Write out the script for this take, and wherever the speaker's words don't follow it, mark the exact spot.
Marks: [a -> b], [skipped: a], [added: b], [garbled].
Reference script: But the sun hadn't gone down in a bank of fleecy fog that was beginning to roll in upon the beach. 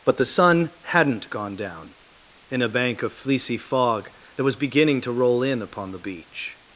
But the sun hadn't gone down in a bank of fleecy fog that was beginning to roll in upon the beach.